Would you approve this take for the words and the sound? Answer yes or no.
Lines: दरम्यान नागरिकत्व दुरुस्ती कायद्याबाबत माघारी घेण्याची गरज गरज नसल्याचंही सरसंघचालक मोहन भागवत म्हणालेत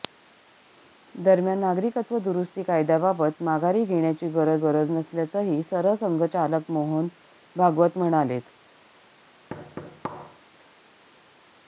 no